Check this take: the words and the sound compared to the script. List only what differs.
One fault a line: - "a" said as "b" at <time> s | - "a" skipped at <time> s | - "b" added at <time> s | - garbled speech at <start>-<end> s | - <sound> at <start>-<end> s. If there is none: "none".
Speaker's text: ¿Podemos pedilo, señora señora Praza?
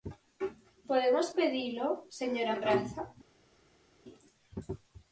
- "señora" skipped at 2.6 s